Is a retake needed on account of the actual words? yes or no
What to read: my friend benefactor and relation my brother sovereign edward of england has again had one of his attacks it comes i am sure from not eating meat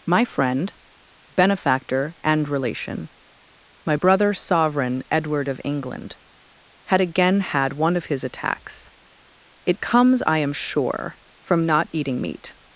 yes